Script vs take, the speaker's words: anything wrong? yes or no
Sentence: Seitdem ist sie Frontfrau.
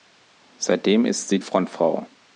no